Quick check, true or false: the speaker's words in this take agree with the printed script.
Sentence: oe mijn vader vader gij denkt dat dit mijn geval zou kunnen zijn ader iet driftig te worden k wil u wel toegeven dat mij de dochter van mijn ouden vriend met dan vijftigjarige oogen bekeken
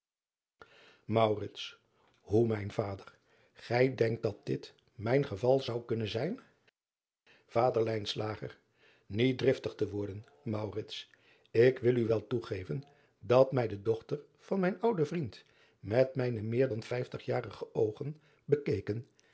false